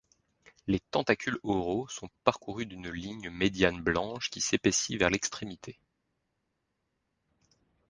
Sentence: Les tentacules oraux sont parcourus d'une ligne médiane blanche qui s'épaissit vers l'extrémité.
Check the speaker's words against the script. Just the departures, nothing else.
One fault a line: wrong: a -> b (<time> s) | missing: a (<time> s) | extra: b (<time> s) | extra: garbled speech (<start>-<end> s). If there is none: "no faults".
no faults